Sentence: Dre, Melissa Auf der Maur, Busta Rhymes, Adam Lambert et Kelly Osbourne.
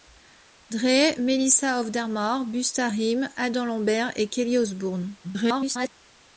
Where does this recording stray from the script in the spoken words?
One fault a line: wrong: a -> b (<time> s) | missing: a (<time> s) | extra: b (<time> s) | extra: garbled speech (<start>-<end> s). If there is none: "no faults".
extra: garbled speech (5.2-5.9 s)